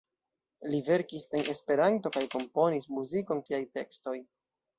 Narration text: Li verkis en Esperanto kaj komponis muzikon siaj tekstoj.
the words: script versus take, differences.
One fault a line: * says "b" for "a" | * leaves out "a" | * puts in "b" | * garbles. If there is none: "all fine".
all fine